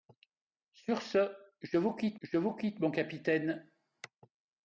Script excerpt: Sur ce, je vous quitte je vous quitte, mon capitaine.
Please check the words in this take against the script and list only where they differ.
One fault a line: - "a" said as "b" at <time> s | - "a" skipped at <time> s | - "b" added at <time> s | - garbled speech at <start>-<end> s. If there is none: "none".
none